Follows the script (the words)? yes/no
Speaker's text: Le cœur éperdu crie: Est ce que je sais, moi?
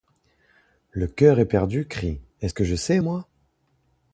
yes